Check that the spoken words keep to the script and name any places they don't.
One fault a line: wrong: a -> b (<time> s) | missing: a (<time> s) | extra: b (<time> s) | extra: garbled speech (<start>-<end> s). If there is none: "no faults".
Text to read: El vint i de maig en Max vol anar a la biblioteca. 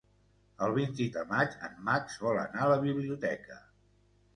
no faults